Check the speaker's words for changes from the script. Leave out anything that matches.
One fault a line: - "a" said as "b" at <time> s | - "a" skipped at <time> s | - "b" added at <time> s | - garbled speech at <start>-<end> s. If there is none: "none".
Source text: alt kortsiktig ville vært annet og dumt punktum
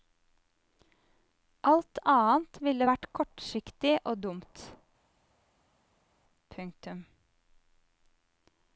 - "kortsiktig" said as "annet" at 2.1 s
- "annet" said as "kortsiktig" at 3.2 s